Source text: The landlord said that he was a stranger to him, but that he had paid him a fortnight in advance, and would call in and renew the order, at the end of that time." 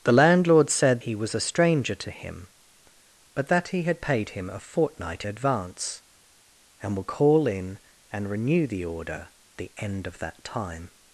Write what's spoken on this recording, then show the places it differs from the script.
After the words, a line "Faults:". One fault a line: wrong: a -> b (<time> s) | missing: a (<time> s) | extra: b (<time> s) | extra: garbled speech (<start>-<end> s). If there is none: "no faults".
The landlord said he was a stranger to him, but that he had paid him a fortnight advance, and would call in and renew the order, the end of that time."
Faults:
missing: that (1.0 s)
missing: in (5.3 s)
missing: at (9.3 s)